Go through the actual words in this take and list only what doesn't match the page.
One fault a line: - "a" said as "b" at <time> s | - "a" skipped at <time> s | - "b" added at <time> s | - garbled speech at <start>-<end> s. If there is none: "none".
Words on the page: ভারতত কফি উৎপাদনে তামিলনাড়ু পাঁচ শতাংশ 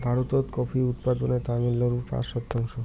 none